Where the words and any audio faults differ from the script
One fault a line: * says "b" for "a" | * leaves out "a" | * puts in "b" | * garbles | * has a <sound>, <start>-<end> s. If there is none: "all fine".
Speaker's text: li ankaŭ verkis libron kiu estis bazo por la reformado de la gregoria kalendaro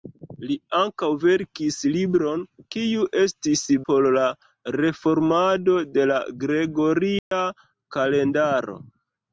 * leaves out "bazo"
* has a dropout, 7.2-7.3 s